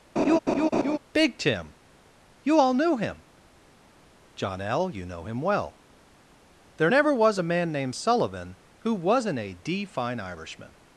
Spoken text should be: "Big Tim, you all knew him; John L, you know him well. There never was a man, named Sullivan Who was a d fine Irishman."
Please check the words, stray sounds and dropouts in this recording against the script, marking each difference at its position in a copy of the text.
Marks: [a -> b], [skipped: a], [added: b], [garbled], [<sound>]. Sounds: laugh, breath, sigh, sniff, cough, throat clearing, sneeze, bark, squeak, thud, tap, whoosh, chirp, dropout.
[laugh] "Big Tim, you all knew him; John L, you know him well. There never was a man, named Sullivan Who [was -> wasn't] a d fine Irishman."